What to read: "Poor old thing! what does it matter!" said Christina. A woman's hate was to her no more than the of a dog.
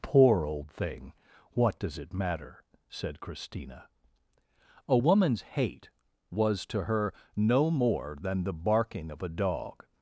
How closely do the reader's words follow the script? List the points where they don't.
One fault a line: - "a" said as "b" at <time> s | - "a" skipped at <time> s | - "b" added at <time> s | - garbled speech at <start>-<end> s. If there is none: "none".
- "barking" added at 8.5 s